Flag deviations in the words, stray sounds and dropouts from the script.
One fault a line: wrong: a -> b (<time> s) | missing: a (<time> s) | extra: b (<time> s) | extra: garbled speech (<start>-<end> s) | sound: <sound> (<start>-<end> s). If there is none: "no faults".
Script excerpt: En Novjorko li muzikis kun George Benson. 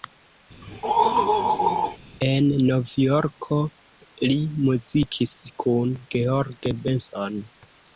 sound: throat clearing (0.6-2.0 s)